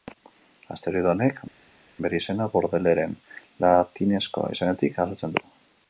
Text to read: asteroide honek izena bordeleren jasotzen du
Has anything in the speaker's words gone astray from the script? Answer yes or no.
yes